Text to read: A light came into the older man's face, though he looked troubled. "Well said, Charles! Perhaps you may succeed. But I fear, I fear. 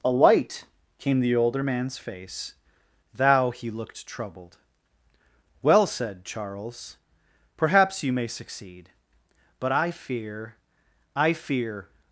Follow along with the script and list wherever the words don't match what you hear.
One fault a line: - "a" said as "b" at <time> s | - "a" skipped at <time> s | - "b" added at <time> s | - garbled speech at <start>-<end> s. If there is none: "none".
- "into" skipped at 1.2 s
- "though" said as "thou" at 3.1 s